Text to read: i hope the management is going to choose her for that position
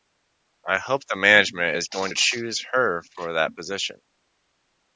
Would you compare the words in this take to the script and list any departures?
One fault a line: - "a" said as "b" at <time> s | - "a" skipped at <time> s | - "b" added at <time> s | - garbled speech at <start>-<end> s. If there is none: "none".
none